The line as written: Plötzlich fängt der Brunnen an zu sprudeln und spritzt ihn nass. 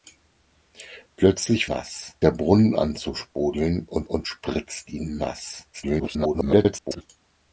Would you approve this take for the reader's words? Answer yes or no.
no